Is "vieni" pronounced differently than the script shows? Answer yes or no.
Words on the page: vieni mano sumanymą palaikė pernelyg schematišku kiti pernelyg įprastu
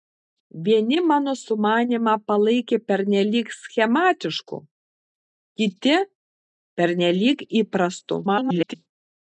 no